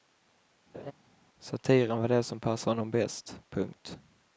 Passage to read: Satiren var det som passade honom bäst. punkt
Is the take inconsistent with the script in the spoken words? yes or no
no